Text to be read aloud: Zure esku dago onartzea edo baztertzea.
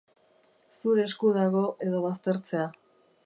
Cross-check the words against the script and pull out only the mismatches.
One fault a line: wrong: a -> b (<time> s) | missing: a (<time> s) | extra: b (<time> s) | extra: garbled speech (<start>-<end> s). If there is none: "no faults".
missing: onartzea (1.6 s)